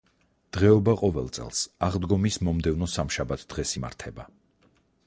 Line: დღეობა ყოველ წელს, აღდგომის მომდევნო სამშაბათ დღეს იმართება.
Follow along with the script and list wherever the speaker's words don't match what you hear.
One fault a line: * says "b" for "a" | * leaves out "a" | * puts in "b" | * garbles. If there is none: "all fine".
all fine